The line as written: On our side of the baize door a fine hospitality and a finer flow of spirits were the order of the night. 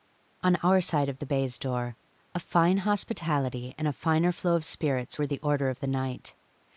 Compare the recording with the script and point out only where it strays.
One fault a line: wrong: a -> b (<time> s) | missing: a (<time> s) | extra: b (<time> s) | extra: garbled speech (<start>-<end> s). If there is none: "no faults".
no faults